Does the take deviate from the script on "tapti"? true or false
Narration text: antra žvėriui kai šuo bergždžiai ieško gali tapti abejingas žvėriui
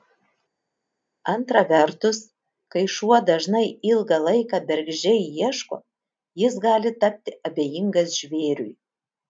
false